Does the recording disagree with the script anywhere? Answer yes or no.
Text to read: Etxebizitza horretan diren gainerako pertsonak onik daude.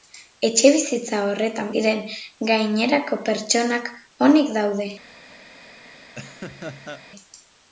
no